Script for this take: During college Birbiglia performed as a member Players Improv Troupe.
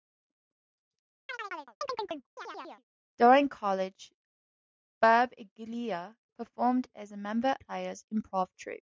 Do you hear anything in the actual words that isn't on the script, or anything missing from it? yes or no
no